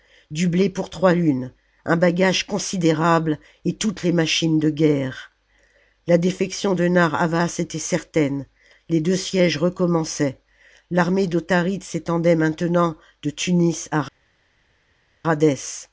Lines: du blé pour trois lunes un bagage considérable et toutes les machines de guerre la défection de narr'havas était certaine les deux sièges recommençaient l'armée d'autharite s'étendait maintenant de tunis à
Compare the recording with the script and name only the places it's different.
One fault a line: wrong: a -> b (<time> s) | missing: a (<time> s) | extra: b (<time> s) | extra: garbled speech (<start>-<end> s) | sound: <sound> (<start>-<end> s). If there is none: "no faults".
no faults